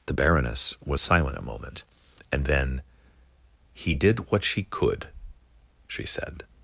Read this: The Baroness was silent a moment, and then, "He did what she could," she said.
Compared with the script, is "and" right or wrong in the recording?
right